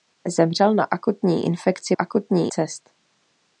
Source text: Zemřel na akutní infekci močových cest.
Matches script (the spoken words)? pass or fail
fail